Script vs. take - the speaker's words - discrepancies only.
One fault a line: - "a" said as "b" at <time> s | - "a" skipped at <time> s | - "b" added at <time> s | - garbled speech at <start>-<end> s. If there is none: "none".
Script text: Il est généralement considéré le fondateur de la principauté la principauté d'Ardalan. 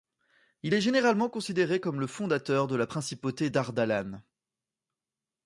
- "comme" added at 1.8 s
- "la principauté" skipped at 3.5 s